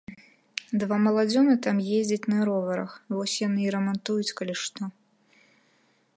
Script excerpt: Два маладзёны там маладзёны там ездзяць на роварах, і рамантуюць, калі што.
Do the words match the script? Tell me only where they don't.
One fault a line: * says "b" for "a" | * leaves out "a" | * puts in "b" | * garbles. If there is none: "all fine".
* leaves out "маладзёны там"
* puts in "вось яны"